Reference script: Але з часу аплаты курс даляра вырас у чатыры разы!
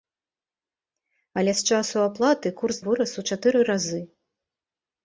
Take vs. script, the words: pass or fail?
fail